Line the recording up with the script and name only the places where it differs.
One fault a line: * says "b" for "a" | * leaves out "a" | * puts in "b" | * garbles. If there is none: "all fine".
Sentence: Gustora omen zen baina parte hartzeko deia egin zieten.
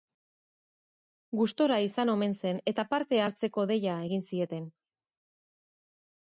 * puts in "izan"
* says "eta" for "baina"